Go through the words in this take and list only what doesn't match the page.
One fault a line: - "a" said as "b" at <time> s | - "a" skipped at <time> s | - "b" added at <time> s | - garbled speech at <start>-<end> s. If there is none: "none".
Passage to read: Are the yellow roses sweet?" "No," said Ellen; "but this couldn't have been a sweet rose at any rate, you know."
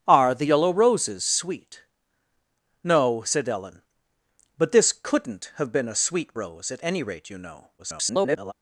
- garbled speech at 7.8-8.5 s